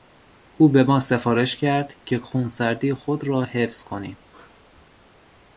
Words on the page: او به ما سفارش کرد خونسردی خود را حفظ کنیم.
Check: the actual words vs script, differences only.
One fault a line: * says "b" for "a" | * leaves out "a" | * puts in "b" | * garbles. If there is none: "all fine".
* puts in "که"